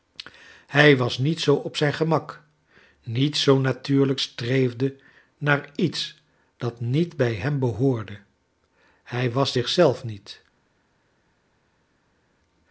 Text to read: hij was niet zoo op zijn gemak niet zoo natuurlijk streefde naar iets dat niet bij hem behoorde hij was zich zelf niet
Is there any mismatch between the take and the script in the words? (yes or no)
no